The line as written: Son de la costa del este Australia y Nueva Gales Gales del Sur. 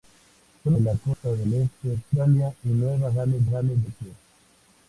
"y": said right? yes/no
yes